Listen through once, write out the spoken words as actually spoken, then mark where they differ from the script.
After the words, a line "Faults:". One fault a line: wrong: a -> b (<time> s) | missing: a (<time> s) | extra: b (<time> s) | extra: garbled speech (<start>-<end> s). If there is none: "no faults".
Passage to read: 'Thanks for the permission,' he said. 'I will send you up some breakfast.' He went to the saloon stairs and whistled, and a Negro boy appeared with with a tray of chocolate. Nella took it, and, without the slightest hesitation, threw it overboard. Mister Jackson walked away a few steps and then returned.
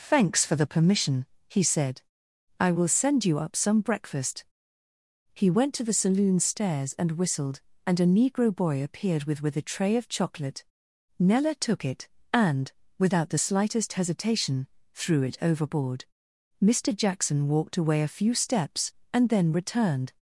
'Thanks for the permission,' he said. 'I will send you up some breakfast.' He went to the saloon stairs and whistled, and a Negro boy appeared with with a tray of chocolate. Nella took it, and, without the slightest hesitation, threw it overboard. Mister Jackson walked away a few steps and then returned.
Faults:
no faults